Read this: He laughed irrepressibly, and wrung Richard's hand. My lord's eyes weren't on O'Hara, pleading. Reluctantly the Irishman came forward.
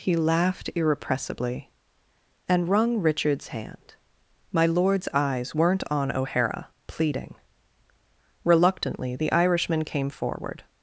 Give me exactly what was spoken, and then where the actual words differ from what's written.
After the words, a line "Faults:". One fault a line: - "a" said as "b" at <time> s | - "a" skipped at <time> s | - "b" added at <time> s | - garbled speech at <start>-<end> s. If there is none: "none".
He laughed irrepressibly, and wrung Richard's hand. My lord's eyes weren't on O'Hara, pleading. Reluctantly the Irishman came forward.
Faults:
none